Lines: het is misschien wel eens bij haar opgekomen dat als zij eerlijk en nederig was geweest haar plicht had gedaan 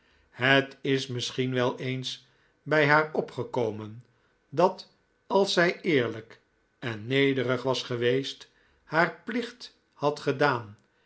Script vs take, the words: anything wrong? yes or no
no